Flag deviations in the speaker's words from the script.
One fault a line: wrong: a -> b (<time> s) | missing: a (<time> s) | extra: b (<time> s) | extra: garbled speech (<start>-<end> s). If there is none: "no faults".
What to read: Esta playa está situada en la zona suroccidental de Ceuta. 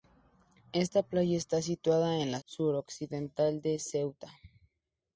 missing: zona (2.4 s)